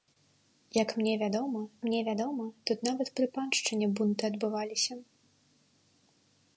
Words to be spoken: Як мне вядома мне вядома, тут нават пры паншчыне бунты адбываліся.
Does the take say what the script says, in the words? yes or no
yes